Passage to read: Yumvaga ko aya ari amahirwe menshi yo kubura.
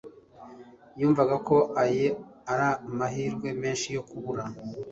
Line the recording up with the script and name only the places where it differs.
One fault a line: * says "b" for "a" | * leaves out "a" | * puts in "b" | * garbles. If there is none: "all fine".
all fine